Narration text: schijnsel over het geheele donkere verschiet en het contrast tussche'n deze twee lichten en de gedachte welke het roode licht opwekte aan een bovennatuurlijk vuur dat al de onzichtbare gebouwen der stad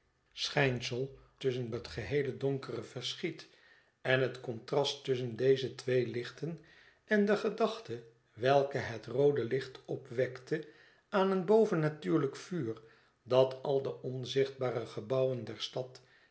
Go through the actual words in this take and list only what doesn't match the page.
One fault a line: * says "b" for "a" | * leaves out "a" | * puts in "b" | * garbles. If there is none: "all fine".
* says "tussche'n" for "over"